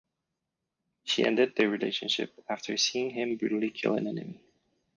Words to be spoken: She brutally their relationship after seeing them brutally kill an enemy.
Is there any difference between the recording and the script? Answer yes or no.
yes